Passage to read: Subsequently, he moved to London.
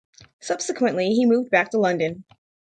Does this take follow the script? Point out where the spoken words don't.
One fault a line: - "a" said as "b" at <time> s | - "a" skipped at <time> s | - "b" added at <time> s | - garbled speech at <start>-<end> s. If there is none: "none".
- "back" added at 1.5 s